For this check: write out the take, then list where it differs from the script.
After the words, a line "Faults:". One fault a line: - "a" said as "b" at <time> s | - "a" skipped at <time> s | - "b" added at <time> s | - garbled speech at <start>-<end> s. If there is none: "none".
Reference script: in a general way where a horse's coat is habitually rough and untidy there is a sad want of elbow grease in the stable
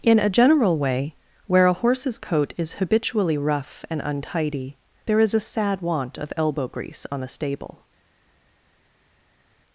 in a general way where a horse's coat is habitually rough and untidy there is a sad want of elbow grease on the stable
Faults:
- "in" said as "on" at 7.1 s